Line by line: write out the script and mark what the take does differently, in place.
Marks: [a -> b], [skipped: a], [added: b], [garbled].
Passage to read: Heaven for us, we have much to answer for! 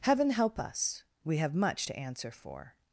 Heaven [for -> help] us, we have much to answer for!